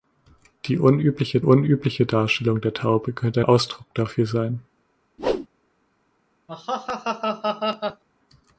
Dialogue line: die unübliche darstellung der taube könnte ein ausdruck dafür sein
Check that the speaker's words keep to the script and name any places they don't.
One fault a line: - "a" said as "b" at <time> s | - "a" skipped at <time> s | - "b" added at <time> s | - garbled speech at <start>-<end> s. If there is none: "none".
- "unübliche" added at 1.4 s
- "ein" skipped at 3.4 s